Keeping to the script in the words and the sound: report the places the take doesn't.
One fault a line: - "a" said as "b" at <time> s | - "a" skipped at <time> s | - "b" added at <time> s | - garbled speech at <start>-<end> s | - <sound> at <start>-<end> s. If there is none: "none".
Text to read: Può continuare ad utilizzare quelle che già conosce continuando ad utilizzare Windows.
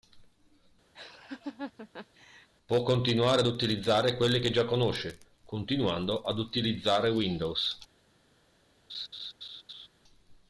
- laugh at 0.9-2.5 s
- laugh at 8.9-9.9 s